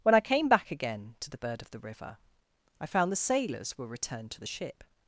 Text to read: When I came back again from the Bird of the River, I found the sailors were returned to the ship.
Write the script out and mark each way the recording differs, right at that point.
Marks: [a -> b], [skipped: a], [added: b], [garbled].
When I came back again [from -> to] the Bird of the River, I found the sailors were returned to the ship.